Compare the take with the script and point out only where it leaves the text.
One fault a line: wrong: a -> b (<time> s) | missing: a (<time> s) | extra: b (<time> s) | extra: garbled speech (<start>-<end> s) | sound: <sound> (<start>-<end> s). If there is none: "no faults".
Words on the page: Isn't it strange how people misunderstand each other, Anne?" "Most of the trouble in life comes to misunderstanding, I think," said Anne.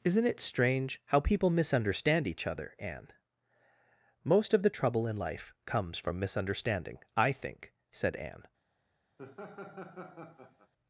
wrong: to -> from (6.0 s)
sound: laugh (9.2-10.7 s)